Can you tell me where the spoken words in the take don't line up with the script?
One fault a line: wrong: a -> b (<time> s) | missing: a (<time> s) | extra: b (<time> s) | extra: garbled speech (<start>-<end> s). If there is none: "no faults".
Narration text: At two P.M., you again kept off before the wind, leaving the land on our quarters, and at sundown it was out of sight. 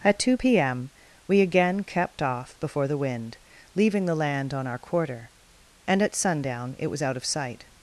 wrong: you -> we (1.3 s)
wrong: quarters -> quarter (4.8 s)